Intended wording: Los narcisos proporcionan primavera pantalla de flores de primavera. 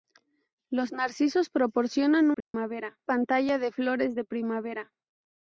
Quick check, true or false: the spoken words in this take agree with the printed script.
true